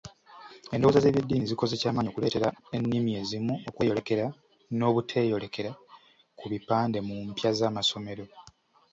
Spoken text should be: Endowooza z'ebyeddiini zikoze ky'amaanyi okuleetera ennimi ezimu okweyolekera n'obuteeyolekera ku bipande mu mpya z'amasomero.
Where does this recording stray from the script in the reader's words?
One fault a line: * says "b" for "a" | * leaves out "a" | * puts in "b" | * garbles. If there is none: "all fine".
all fine